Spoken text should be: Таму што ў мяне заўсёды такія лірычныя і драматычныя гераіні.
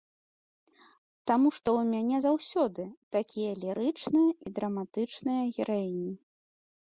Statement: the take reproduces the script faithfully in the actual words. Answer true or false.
true